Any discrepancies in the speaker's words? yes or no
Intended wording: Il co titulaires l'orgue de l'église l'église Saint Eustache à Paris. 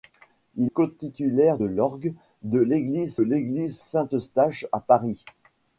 no